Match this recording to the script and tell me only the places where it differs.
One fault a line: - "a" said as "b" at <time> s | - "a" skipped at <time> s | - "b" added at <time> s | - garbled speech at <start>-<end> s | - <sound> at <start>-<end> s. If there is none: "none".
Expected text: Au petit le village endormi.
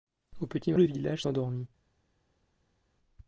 none